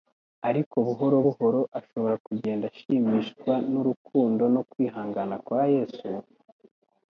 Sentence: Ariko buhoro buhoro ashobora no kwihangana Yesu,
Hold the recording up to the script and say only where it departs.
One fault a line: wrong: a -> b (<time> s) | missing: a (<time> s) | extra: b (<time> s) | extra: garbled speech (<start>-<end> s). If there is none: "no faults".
extra: kugenda ashimishwa n'urukundo (2.3 s)
extra: kwa (5.4 s)